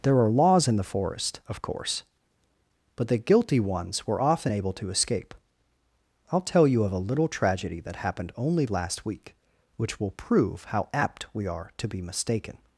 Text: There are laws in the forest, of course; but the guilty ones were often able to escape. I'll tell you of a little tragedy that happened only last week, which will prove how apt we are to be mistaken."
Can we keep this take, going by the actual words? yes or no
yes